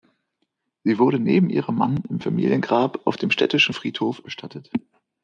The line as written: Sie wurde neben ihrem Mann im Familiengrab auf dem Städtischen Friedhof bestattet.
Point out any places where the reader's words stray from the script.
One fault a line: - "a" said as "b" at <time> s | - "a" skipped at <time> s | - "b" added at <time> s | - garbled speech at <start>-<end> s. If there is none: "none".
none